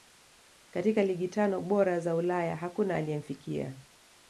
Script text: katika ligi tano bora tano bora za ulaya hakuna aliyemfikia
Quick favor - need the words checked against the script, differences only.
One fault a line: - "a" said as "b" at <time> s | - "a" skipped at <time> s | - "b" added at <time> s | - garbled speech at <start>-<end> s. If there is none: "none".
- "tano bora" skipped at 2.0 s